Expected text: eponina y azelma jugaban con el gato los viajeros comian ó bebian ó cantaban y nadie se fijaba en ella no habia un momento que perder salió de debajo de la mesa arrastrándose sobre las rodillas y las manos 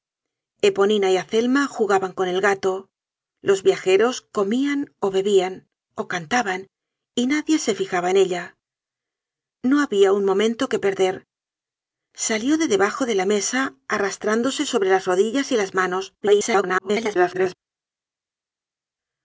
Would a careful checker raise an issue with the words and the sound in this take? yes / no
yes